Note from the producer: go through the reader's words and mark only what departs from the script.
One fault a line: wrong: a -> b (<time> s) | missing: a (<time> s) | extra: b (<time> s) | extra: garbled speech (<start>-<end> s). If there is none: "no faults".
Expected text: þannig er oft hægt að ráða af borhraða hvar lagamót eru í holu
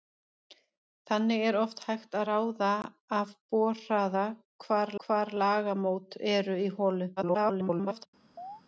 extra: hvar (5.1 s)
extra: garbled speech (7.2-8.1 s)